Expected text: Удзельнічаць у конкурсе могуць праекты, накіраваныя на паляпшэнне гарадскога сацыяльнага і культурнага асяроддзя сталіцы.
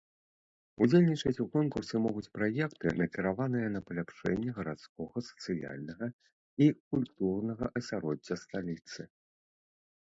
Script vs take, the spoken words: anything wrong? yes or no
no